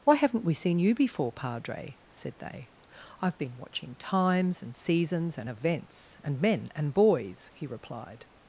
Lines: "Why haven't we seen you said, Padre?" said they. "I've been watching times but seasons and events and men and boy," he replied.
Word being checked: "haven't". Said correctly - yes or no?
yes